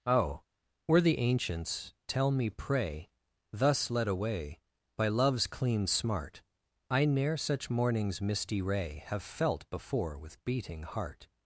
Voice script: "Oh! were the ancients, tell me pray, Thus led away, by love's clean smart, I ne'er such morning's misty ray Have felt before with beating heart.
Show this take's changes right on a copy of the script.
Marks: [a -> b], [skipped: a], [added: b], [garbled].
"Oh! were the ancients, tell me pray, Thus led away, by love's clean smart, I ne'er such morning's misty ray Have felt before with beating heart.